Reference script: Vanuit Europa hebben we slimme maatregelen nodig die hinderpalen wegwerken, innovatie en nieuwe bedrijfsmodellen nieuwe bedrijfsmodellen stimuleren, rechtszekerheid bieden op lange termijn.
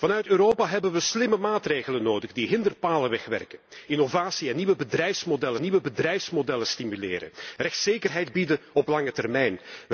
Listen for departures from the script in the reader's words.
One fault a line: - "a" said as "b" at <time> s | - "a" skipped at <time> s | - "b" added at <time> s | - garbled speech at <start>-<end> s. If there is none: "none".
none